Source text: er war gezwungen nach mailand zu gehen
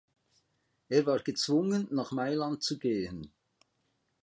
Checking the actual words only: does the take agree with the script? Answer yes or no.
yes